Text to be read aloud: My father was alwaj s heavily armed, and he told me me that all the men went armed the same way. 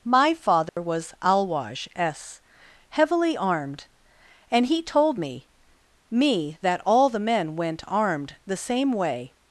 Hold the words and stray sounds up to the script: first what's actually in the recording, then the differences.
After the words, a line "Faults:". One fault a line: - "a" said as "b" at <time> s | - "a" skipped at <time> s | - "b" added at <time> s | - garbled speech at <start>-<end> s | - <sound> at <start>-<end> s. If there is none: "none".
My father was alwaj s heavily armed, and he told me me that all the men went armed the same way.
Faults:
- dropout at 0.7-0.8 s